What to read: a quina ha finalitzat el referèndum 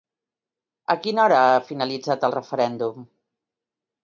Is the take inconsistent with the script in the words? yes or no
yes